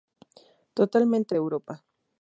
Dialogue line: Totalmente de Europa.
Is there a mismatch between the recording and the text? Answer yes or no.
no